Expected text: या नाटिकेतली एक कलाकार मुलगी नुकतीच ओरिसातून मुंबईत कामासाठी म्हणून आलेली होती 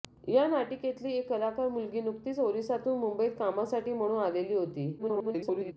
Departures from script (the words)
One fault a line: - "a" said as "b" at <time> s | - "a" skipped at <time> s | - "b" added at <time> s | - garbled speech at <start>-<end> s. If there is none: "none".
- garbled speech at 5.0-5.7 s